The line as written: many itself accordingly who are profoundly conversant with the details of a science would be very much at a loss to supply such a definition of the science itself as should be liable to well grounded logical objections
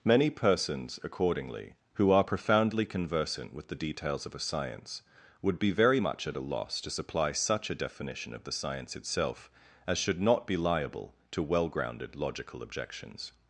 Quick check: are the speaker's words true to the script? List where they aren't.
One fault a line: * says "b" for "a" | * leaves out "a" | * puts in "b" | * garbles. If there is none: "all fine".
* says "persons" for "itself"
* puts in "not"